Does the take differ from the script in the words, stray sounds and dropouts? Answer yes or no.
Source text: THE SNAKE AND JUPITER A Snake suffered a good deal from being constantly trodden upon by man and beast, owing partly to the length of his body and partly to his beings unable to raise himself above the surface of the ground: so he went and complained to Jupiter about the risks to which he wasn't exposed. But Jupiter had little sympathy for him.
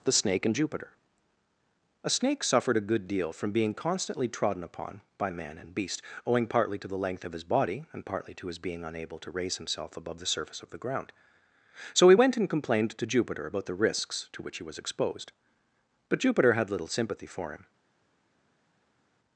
yes